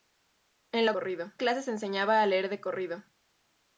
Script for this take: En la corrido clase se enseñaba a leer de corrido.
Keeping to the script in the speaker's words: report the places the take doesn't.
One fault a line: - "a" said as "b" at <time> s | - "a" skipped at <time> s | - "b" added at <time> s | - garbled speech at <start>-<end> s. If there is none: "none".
none